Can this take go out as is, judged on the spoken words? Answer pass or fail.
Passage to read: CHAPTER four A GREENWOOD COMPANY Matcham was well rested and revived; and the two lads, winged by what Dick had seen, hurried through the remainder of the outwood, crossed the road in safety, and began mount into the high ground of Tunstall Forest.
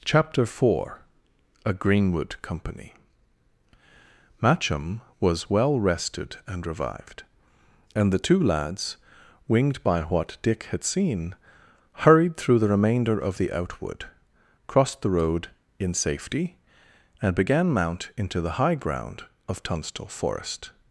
pass